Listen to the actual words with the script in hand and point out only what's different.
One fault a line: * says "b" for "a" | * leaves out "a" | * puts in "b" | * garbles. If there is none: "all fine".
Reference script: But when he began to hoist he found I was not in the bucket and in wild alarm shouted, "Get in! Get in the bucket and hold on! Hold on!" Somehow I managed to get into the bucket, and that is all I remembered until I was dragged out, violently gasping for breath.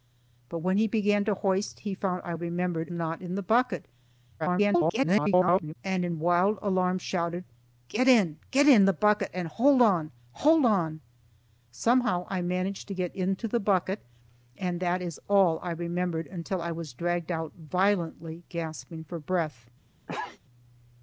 * says "remembered" for "was"
* garbles